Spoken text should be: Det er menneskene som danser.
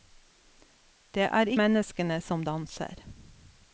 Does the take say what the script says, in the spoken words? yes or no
yes